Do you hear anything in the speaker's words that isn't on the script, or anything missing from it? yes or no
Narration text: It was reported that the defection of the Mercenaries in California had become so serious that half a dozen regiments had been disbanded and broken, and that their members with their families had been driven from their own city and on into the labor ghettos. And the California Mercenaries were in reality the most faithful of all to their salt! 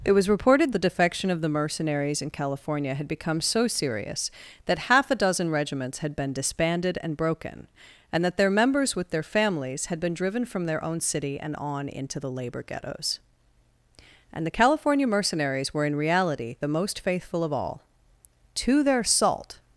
yes